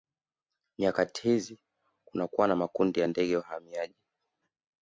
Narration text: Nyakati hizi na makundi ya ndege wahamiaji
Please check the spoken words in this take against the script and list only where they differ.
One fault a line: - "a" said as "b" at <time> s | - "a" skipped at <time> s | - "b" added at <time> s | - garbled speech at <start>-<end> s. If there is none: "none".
- "kunakuwa" added at 2.0 s